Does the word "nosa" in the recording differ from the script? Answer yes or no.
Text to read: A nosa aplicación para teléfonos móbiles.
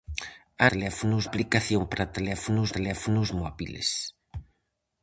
yes